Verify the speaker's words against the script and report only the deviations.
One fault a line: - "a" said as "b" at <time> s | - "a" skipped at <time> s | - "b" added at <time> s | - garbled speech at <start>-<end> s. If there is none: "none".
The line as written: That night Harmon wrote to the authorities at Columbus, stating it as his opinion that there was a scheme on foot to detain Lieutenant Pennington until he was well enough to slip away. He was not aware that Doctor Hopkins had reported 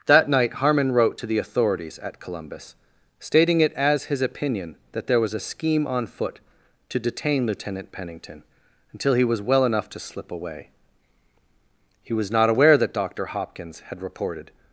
none